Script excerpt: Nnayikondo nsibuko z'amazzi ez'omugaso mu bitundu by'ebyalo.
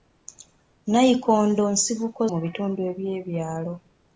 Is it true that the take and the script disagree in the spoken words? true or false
true